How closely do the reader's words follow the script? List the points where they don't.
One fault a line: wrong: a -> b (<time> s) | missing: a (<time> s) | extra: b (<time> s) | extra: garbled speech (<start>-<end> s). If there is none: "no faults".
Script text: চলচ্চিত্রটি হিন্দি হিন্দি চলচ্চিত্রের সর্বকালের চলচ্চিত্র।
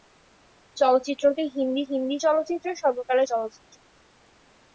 no faults